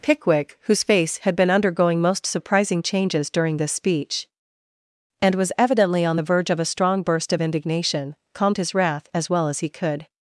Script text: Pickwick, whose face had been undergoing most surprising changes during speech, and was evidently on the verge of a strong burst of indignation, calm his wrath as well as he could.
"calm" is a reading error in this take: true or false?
true